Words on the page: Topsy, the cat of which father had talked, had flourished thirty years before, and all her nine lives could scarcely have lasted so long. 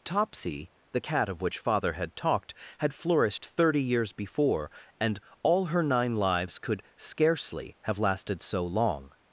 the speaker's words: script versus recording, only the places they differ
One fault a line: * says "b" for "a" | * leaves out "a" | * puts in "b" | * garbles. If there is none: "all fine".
all fine